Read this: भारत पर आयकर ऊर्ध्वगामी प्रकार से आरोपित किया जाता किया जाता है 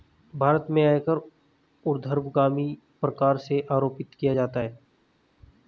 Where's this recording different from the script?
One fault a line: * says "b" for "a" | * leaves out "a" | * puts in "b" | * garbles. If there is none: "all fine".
* says "में" for "पर"
* leaves out "किया जाता"